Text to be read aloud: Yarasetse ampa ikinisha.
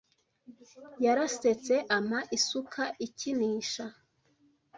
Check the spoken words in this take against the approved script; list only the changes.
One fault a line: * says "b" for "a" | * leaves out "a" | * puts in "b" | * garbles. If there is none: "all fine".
* puts in "isuka"